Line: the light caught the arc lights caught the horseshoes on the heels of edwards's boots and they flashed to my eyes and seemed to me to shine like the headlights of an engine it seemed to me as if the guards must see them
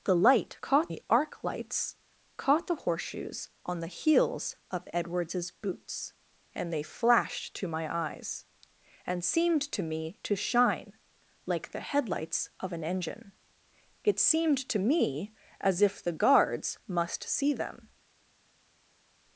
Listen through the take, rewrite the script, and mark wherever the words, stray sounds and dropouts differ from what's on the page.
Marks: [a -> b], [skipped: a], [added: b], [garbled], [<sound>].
the light caught the arc lights caught the horseshoes on the heels of edwards's boots and they flashed to my eyes and seemed to me to shine like the headlights of an engine it seemed to me as if the guards must see them